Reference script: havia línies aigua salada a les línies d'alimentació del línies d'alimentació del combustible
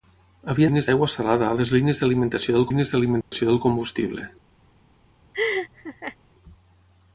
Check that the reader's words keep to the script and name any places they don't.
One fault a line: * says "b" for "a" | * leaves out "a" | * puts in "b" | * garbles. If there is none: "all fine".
all fine